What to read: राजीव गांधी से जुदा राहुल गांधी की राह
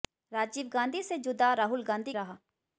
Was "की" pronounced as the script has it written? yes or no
no